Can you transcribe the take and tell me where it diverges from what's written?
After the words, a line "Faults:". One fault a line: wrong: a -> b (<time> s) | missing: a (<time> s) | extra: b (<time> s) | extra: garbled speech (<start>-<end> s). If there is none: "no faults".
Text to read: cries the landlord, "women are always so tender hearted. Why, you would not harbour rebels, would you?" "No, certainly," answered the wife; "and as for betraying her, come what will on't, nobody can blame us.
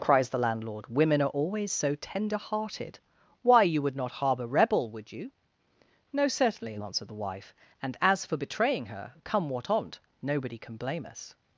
cries the landlord, "women are always so tender hearted. Why, you would not harbour rebel, would you?" "No, certainly," answered the wife; "and as for betraying her, come what on't, nobody can blame us.
Faults:
wrong: rebels -> rebel (4.5 s)
missing: will (9.7 s)